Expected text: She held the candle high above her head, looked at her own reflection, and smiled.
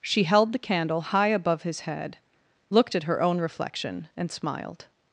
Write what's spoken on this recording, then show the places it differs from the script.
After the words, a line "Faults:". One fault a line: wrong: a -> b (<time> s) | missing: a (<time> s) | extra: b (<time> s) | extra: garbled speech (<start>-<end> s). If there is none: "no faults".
She held the candle high above his head, looked at her own reflection, and smiled.
Faults:
wrong: her -> his (1.6 s)